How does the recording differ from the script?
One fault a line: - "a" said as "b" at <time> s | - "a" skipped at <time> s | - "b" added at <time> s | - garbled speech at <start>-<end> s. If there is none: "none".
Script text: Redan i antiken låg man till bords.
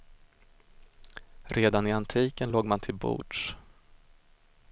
none